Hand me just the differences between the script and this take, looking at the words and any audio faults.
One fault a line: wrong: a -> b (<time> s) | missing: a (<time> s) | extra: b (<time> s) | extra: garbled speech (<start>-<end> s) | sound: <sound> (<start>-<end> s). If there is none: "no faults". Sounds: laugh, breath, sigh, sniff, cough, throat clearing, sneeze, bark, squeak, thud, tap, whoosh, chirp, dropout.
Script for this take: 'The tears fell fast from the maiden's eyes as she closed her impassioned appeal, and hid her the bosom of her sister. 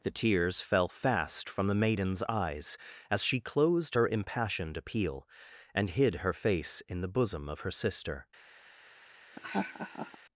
extra: face in (6.3 s)
sound: laugh (9.3-10.2 s)